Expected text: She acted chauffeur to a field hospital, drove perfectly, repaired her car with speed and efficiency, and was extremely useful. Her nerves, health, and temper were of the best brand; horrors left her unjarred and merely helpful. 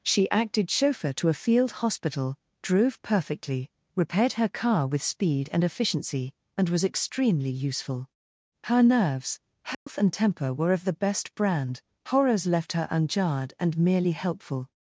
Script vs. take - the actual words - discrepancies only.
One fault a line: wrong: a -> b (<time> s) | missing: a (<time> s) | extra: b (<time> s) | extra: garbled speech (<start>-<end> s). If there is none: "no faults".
no faults